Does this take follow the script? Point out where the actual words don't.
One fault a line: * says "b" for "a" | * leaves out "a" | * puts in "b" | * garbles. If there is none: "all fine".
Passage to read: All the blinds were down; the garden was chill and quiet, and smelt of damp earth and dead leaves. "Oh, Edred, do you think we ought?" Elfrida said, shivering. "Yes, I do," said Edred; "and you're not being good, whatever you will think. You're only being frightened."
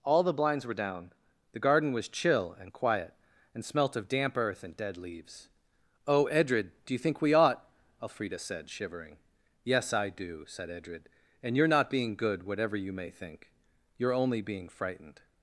* says "may" for "will"